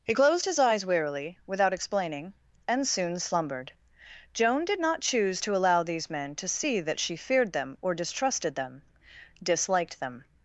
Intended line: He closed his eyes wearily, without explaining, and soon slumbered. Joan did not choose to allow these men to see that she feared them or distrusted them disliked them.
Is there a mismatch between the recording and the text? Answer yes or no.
no